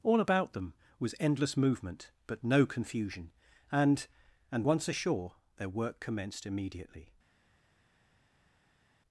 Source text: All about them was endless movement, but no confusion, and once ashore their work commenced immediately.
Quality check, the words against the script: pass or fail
fail